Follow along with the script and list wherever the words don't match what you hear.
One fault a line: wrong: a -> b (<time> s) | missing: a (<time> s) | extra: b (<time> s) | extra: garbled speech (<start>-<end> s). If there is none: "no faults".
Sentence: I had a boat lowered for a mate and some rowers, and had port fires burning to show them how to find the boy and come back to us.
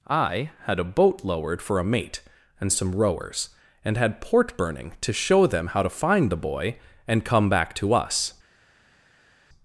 missing: fires (4.5 s)